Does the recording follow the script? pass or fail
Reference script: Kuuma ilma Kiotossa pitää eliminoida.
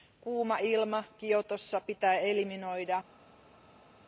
pass